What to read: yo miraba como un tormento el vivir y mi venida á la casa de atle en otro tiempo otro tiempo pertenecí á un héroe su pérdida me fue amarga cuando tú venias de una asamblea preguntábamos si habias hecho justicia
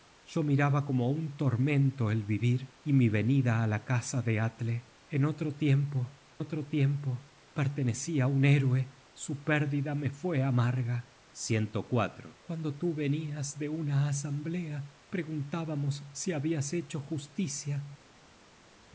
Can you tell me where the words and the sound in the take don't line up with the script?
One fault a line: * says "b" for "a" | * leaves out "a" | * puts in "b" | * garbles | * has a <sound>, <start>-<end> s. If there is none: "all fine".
all fine